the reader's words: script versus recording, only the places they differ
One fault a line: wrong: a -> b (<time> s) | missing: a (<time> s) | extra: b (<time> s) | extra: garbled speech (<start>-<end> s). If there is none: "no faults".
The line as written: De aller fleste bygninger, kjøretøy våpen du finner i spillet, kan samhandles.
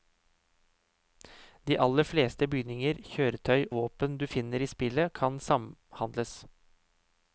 no faults